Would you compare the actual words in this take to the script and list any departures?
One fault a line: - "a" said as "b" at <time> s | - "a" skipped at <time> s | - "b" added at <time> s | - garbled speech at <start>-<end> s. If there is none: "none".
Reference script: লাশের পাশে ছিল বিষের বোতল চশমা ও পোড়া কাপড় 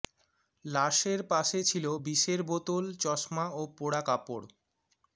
none